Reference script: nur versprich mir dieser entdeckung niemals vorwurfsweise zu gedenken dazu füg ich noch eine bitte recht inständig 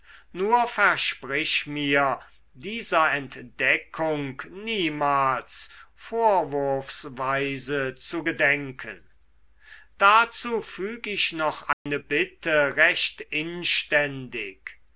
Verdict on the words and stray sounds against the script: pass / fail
fail